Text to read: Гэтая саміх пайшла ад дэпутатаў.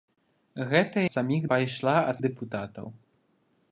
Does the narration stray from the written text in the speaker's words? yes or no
no